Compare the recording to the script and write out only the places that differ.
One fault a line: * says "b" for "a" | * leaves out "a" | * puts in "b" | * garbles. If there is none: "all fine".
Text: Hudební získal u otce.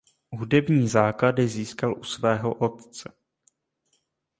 * puts in "základy"
* puts in "svého"